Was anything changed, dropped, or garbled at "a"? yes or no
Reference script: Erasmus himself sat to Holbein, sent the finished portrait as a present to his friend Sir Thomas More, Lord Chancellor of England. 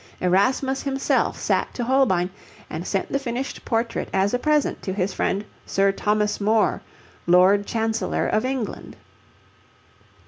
no